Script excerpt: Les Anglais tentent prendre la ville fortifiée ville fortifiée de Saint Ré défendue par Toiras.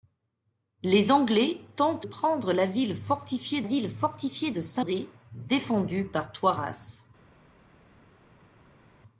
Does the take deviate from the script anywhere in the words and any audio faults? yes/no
no